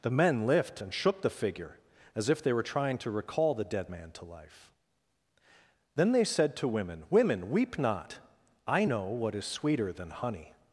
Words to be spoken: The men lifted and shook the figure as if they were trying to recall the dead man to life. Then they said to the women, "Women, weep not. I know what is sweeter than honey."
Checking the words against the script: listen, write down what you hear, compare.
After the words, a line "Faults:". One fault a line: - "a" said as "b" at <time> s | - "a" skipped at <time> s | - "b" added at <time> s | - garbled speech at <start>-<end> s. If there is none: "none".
The men lift and shook the figure as if they were trying to recall the dead man to life. Then they said to women, "Women, weep not. I know what is sweeter than honey."
Faults:
- "lifted" said as "lift" at 0.5 s
- "the" skipped at 6.7 s